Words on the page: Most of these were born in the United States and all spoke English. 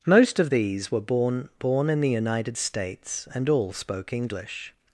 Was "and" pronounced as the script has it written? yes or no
yes